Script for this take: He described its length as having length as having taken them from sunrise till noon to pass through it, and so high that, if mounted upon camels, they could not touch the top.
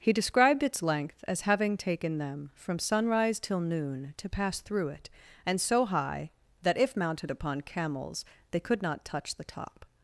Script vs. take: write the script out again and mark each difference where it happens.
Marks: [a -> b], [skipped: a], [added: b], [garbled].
He described its length as having [skipped: length as having] taken them from sunrise till noon to pass through it, and so high that, if mounted upon camels, they could not touch the top.